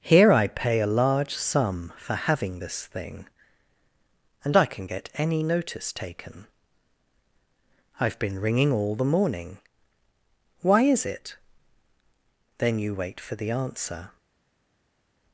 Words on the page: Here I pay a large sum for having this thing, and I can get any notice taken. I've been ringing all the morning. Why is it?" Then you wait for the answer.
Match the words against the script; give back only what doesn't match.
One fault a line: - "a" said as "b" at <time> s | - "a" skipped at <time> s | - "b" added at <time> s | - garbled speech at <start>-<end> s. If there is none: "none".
none